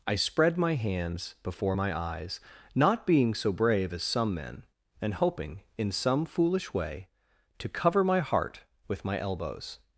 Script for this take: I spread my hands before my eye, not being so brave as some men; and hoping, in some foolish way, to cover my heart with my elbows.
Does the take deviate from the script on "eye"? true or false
true